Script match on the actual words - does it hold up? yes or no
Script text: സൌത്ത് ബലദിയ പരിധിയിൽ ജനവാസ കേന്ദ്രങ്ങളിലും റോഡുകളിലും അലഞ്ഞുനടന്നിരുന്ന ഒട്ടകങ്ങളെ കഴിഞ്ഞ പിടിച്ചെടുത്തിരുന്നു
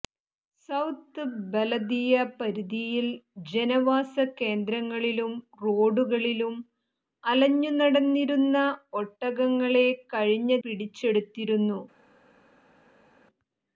yes